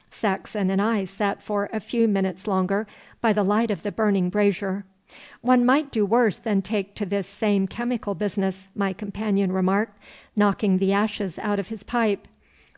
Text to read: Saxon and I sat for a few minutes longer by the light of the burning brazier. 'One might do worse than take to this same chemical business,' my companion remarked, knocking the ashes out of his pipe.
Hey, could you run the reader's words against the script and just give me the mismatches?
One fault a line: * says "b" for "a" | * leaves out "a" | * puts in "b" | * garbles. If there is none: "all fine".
all fine